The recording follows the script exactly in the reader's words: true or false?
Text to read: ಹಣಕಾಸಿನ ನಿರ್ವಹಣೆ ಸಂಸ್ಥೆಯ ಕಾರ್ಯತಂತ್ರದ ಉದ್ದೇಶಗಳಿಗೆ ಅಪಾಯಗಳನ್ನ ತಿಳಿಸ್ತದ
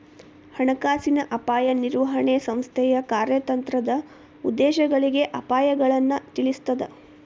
false